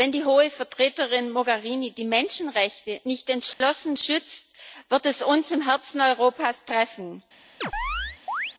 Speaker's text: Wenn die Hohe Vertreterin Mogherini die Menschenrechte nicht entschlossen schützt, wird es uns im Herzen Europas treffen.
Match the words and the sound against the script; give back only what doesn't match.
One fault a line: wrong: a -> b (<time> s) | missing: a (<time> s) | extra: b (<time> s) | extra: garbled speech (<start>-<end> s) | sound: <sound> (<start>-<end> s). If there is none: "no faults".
sound: dropout (3.5-3.6 s)
sound: chirp (7.6-8.5 s)